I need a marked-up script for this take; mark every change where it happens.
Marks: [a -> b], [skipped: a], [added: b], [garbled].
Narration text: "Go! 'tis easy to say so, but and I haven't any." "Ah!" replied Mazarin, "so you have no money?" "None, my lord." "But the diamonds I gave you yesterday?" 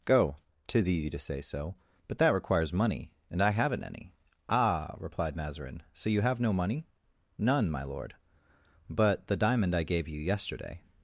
"Go! 'tis easy to say so, but [added: that requires money] and I haven't any." "Ah!" replied Mazarin, "so you have no money?" "None, my lord." "But the [diamonds -> diamond] I gave you yesterday?"